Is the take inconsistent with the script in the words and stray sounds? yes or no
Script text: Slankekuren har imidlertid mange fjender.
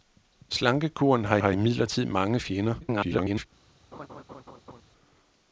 yes